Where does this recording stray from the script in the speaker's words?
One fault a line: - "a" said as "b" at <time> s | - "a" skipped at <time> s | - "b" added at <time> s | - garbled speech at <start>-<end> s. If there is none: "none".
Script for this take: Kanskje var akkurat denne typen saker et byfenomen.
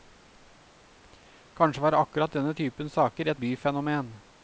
none